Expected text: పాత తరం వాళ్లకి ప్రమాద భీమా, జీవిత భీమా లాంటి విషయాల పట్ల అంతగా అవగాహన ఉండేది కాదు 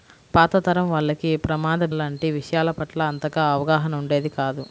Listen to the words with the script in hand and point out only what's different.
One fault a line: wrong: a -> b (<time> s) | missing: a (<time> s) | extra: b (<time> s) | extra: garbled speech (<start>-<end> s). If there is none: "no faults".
missing: భీమా జీవిత భీమా (1.8 s)